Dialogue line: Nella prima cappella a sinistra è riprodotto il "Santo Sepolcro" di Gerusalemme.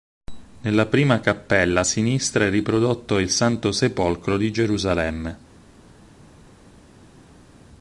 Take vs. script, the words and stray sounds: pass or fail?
pass